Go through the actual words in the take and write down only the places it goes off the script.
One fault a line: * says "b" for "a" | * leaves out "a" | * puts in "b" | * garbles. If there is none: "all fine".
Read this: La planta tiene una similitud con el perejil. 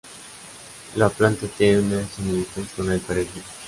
all fine